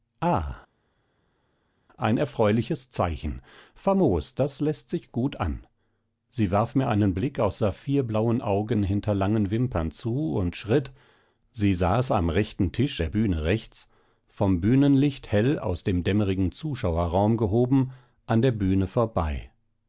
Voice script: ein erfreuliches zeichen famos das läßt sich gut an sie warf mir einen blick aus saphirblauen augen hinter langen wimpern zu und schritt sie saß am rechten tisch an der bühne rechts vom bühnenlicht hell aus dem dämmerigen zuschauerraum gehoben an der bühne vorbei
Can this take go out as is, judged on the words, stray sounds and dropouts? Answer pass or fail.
fail